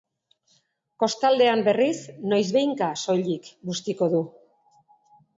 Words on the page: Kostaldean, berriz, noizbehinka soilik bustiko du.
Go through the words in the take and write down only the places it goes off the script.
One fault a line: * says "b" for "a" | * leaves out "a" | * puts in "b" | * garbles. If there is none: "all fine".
all fine